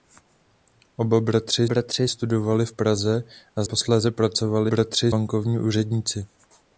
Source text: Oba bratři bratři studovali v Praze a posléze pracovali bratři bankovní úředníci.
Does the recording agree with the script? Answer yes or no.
yes